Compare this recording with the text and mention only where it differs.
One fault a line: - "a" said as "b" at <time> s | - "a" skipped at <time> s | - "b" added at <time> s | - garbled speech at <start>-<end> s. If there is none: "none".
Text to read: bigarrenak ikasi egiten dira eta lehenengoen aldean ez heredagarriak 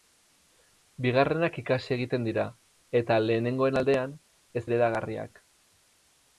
none